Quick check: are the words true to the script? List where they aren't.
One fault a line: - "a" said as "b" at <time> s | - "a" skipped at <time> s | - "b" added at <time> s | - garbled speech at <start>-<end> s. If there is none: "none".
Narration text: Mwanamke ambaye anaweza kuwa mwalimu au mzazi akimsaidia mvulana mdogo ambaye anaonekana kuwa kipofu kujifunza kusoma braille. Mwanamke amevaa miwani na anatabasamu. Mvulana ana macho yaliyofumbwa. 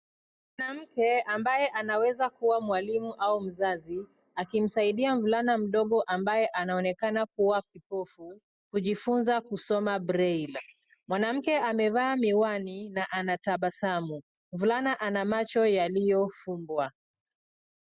none